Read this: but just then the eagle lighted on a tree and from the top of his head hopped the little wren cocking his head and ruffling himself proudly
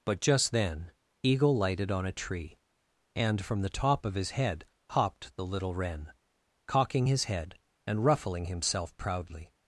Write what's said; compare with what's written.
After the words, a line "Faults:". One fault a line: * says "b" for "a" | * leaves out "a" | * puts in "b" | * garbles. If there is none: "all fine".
but just then eagle lighted on a tree and from the top of his head hopped the little wren cocking his head and ruffling himself proudly
Faults:
* leaves out "the"